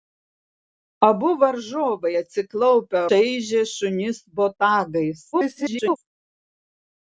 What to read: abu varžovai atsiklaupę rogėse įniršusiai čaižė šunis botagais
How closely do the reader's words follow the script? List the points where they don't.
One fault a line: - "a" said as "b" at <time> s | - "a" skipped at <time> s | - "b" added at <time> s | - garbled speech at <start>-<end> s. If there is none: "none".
- "rogėse įniršusiai" skipped at 3.0 s
- garbled speech at 5.3-6.0 s